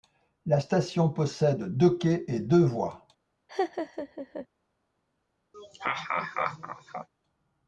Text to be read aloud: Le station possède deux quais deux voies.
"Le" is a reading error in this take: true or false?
true